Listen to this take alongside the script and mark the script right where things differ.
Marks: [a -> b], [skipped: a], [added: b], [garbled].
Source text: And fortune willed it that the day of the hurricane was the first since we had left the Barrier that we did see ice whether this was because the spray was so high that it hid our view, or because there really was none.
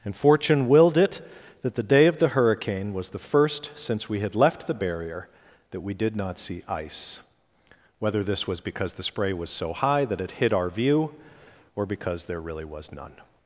And fortune willed it that the day of the hurricane was the first since we had left the Barrier that we did [added: not] see ice whether this was because the spray was so high that it hid our view, or because there really was none.